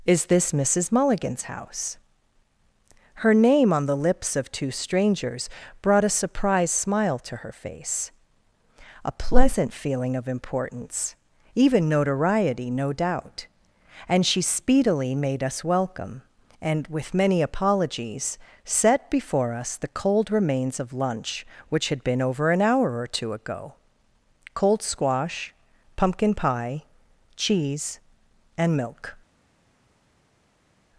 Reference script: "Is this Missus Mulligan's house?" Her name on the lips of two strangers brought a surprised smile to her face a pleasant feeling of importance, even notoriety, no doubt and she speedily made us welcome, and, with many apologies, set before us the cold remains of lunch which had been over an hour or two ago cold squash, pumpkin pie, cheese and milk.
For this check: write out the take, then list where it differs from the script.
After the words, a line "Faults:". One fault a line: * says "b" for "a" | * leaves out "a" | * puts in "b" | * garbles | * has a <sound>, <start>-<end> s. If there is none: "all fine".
"Is this Missus Mulligan's house?" Her name on the lips of two strangers brought a surprised smile to her face a pleasant feeling of importance, even notoriety, no doubt and she speedily made us welcome, and, with many apologies, set before us the cold remains of lunch which had been over an hour or two ago cold squash, pumpkin pie, cheese and milk.
Faults:
all fine